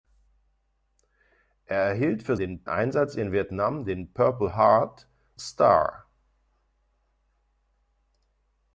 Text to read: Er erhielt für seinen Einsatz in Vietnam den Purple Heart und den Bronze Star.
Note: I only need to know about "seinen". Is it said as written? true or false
false